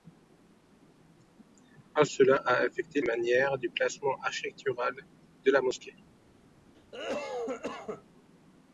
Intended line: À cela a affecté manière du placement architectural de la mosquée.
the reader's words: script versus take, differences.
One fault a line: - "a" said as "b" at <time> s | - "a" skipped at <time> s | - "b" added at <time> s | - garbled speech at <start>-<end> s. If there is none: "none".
none